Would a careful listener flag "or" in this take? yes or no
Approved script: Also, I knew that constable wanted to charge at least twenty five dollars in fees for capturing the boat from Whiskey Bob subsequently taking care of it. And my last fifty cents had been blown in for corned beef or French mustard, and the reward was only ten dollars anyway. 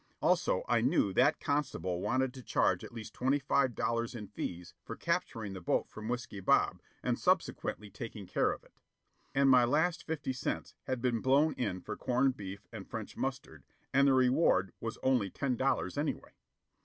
yes